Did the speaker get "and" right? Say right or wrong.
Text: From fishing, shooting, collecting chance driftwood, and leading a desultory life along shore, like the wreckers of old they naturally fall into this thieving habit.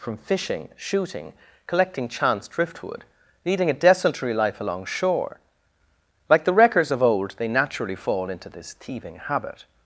wrong